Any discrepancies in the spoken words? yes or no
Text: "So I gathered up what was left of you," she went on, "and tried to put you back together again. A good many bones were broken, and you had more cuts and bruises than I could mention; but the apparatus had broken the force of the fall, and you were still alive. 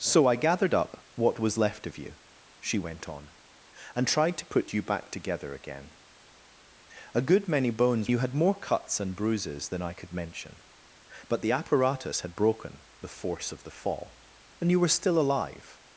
yes